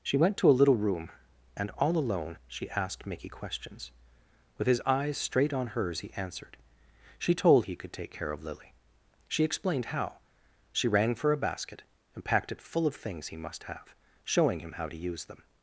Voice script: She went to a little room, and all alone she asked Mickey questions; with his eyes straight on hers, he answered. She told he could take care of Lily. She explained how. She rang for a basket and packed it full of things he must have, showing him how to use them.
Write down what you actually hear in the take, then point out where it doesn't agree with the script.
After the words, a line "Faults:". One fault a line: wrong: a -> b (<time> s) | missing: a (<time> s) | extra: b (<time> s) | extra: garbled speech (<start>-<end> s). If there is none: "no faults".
She went to a little room, and all alone she asked Mickey questions; with his eyes straight on hers, he answered. She told he could take care of Lily. She explained how. She rang for a basket and packed it full of things he must have, showing him how to use them.
Faults:
no faults